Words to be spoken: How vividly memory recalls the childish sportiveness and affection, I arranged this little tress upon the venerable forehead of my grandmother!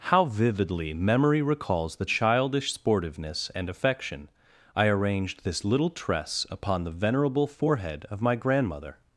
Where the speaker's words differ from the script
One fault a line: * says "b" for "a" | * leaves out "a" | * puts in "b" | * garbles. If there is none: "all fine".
all fine